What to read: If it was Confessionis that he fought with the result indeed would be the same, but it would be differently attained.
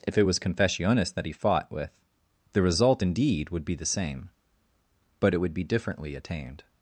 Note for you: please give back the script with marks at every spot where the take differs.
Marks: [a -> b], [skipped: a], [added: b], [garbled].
If it was Confessionis that he fought with the result indeed would be the same, but it would be differently attained.